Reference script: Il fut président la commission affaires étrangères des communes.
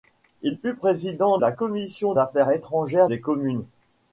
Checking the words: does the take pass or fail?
pass